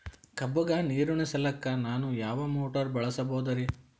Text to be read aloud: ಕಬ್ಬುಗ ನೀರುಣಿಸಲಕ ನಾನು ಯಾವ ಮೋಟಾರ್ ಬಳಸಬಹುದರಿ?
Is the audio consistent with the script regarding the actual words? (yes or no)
yes